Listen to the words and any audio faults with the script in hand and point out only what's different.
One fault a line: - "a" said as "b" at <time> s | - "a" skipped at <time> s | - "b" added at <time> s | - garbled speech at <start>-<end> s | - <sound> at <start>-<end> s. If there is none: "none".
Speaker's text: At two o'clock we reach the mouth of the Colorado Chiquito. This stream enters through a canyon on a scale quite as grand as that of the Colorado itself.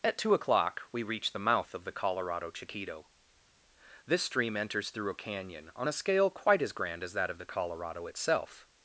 none